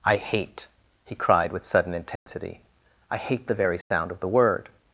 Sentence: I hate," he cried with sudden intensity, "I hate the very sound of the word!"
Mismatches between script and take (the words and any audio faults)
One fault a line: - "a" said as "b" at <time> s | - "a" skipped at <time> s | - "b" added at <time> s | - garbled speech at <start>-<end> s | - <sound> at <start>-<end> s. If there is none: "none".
- dropout at 2.2-2.3 s
- dropout at 3.8-3.9 s